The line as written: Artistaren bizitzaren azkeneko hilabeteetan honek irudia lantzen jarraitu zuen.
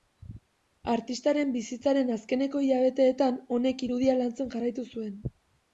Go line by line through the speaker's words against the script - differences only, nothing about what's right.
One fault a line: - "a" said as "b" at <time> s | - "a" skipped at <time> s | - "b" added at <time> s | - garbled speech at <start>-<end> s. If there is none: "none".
none